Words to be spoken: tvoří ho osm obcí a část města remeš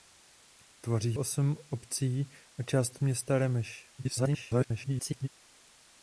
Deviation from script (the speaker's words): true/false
true